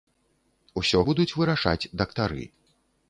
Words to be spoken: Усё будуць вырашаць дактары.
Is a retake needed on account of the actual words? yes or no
no